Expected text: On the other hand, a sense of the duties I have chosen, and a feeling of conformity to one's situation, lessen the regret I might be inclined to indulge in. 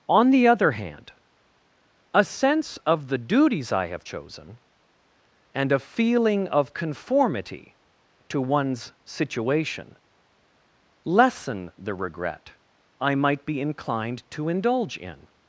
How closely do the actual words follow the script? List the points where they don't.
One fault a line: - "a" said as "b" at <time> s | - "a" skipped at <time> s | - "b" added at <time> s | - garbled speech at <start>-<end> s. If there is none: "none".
none